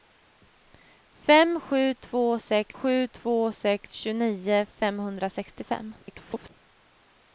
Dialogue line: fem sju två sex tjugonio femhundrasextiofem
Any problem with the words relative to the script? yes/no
yes